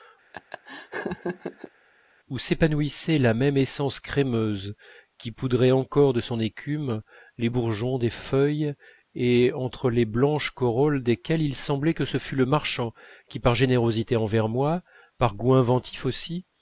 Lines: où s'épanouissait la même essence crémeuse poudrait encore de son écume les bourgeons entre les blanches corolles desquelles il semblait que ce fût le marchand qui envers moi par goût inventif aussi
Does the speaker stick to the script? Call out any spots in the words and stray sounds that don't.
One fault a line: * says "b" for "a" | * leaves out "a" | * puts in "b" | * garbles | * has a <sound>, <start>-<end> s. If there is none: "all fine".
* has a laugh, 0.3-1.7 s
* puts in "qui"
* puts in "des feuilles et"
* puts in "par générosité"